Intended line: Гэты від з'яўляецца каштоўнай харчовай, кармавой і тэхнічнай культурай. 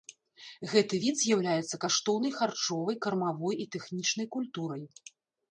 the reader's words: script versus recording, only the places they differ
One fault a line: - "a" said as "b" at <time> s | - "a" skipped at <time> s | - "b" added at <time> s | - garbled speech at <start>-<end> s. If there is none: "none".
none